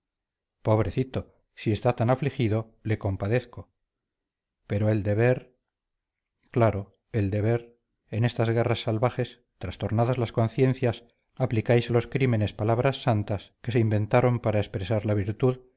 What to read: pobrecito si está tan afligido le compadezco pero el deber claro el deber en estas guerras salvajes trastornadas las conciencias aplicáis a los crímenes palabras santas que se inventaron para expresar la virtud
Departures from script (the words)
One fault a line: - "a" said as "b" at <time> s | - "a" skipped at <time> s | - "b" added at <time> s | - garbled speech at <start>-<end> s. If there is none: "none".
none